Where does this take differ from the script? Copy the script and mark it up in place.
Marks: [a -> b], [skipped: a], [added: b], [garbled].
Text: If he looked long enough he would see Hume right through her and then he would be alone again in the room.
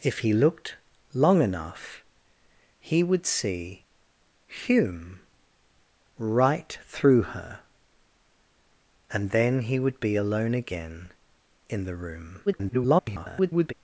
If he looked long enough he would see Hume right through her and then he would be alone again in the room. [garbled]